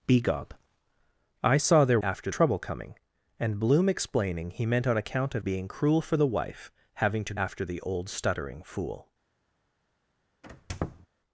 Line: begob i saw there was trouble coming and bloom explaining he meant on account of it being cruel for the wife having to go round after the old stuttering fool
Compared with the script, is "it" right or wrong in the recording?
wrong